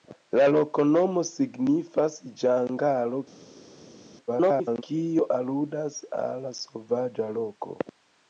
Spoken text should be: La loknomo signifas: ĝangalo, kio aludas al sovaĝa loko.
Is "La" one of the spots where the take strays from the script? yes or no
no